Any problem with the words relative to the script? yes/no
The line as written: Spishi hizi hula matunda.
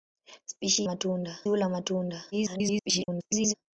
yes